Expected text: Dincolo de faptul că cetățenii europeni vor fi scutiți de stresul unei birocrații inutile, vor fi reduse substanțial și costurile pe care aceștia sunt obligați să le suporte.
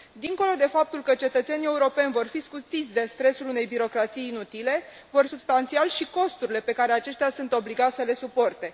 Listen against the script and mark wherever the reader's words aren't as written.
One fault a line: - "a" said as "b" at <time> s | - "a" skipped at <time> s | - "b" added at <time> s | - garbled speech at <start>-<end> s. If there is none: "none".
- "fi reduse" skipped at 5.2 s